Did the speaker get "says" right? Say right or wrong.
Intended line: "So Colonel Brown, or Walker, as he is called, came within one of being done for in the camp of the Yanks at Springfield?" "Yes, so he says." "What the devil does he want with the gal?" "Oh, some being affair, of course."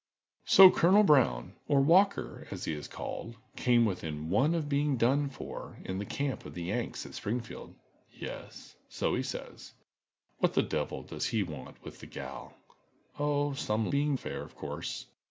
right